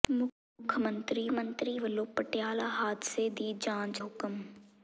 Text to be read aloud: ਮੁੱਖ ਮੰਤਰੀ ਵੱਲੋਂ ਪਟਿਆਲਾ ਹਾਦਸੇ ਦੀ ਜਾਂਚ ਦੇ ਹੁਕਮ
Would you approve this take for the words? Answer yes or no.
no